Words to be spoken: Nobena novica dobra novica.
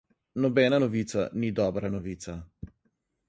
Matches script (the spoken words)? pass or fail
fail